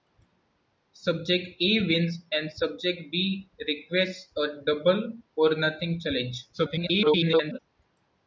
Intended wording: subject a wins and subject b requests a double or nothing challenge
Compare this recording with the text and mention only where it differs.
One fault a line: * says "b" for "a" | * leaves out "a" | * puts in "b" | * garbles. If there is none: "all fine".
* garbles